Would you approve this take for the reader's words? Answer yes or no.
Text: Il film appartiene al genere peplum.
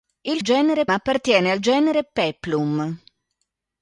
no